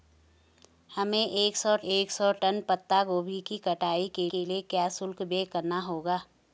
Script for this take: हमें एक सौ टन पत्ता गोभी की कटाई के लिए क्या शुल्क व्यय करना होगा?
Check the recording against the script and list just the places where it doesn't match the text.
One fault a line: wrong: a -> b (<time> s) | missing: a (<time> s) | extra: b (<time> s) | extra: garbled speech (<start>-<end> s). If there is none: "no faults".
extra: एक सौ (1.8 s)
extra: के (4.3 s)